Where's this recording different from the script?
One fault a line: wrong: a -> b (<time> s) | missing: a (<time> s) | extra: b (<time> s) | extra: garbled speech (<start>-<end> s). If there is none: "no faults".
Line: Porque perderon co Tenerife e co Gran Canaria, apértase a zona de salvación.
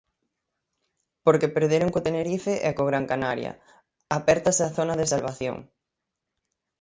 no faults